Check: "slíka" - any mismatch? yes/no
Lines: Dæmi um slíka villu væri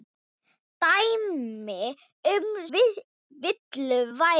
yes